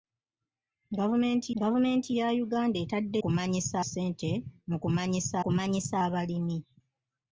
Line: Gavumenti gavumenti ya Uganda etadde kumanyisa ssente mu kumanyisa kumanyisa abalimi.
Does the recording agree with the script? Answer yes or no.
yes